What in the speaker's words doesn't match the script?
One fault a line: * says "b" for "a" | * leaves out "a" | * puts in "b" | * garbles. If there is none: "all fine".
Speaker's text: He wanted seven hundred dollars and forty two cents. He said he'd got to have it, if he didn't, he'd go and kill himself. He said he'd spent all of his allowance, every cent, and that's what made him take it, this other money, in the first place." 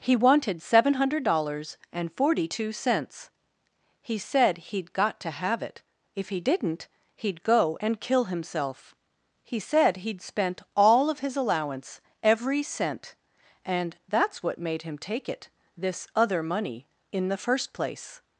all fine